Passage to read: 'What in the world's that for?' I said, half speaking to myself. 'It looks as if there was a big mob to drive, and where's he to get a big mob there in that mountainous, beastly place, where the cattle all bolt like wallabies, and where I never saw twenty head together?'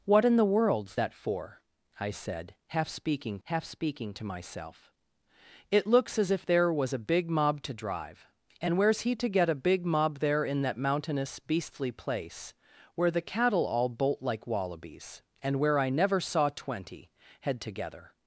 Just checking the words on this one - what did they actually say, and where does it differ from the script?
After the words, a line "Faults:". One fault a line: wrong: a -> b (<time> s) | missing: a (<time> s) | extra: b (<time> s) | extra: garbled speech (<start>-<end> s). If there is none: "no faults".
'What in the world's that for?' I said, half speaking half speaking to myself. 'It looks as if there was a big mob to drive, and where's he to get a big mob there in that mountainous, beastly place, where the cattle all bolt like wallabies, and where I never saw twenty head together?'
Faults:
extra: half speaking (3.4 s)